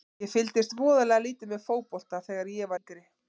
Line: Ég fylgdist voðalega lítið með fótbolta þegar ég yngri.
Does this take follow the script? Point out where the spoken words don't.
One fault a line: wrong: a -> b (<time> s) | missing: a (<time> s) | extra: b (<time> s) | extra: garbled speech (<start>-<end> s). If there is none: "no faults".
no faults